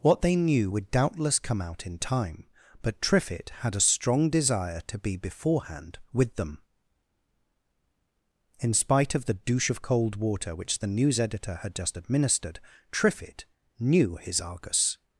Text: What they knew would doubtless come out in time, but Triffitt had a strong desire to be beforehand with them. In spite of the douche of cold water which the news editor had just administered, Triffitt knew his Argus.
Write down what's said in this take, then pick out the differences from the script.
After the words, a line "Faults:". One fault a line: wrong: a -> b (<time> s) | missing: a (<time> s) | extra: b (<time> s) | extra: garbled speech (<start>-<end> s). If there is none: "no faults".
What they knew would doubtless come out in time, but Triffitt had a strong desire to be beforehand with them. In spite of the douche of cold water which the news editor had just administered, Triffitt knew his Argus.
Faults:
no faults